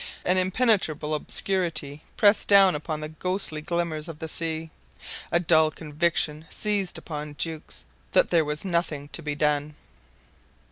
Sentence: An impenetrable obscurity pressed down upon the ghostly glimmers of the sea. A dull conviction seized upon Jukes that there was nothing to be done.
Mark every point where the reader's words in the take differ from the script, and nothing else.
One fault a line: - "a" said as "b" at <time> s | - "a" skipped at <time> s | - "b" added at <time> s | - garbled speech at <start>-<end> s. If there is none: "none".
none